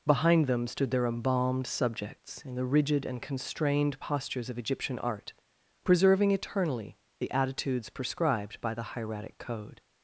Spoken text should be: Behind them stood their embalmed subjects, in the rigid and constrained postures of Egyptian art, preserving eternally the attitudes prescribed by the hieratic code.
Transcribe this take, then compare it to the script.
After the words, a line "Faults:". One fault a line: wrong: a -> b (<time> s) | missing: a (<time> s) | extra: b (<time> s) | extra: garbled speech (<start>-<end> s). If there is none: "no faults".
Behind them stood their embalmed subjects, in the rigid and constrained postures of Egyptian art, preserving eternally the attitudes prescribed by the hieratic code.
Faults:
no faults